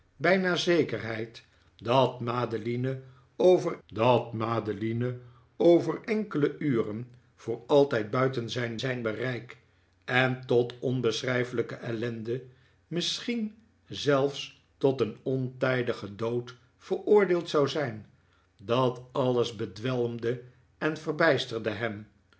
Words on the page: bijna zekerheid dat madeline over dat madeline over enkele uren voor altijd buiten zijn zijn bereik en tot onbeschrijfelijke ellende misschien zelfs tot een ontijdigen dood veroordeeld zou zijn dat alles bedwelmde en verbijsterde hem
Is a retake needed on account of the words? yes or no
no